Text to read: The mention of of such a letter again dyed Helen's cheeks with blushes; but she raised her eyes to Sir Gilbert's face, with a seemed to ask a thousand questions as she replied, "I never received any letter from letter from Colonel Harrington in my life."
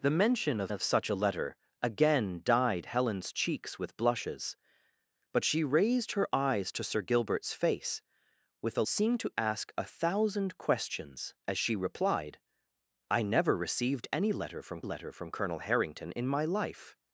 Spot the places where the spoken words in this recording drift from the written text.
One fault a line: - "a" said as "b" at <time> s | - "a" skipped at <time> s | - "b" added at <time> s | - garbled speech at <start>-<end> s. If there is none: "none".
none